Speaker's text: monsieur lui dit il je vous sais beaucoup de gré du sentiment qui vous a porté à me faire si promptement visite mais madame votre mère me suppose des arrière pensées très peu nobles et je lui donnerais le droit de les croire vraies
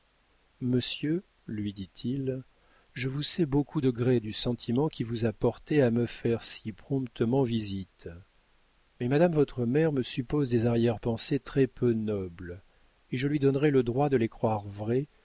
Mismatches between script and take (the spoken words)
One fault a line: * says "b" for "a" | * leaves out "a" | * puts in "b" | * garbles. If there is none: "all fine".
all fine